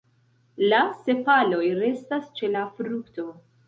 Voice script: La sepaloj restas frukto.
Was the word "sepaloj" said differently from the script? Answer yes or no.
no